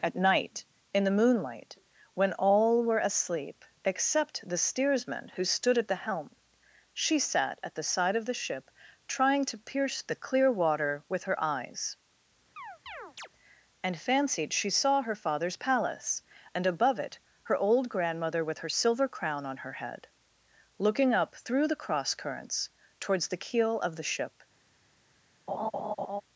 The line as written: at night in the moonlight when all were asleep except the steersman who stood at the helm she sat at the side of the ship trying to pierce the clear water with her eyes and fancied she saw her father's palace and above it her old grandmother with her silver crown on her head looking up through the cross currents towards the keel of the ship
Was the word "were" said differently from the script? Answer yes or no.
no